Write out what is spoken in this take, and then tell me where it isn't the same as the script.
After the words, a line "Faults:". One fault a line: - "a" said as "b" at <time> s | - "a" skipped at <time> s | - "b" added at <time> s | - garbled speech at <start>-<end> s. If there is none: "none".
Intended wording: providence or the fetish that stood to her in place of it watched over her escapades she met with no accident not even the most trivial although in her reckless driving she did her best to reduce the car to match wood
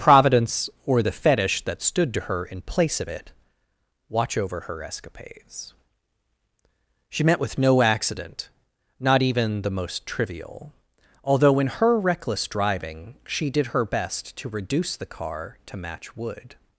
providence or the fetish that stood to her in place of it watch over her escapades she met with no accident not even the most trivial although in her reckless driving she did her best to reduce the car to match wood
Faults:
- "watched" said as "watch" at 4.1 s